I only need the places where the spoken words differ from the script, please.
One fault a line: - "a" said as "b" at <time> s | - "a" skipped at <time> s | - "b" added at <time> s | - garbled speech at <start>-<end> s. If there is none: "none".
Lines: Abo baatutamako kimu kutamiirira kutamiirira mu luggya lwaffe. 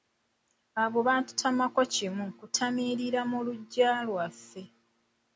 - "kutamiirira" skipped at 3.2 s